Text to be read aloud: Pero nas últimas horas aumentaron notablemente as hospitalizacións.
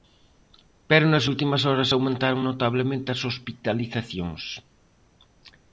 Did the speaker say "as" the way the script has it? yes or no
yes